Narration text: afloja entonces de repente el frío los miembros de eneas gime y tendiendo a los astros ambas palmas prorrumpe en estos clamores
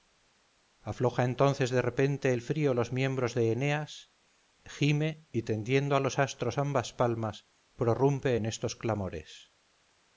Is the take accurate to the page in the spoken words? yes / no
yes